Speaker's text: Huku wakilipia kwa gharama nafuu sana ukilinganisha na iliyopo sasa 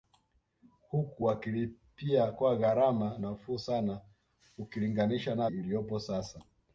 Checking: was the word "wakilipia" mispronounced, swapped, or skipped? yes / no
no